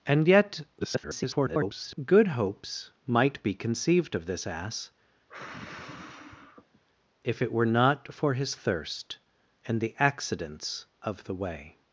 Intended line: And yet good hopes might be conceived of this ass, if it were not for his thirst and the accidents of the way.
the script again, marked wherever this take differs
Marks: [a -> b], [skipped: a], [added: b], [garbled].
And yet [garbled] good hopes might be conceived of this ass, if it were not for his thirst and the accidents of the way.